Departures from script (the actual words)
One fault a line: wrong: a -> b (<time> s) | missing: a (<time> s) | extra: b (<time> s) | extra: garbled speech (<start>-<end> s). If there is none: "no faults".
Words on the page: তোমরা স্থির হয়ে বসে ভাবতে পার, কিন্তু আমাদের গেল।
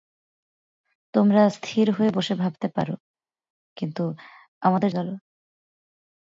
no faults